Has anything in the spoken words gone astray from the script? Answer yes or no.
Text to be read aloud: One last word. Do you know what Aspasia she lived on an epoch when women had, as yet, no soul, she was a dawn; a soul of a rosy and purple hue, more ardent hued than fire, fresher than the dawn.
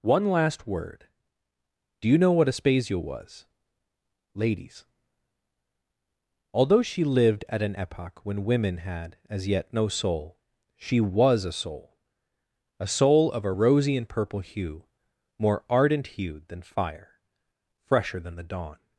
yes